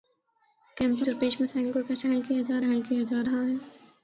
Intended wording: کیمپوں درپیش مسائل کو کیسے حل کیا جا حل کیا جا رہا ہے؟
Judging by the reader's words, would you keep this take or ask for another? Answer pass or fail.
pass